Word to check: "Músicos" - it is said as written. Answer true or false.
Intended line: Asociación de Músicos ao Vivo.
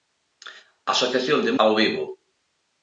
false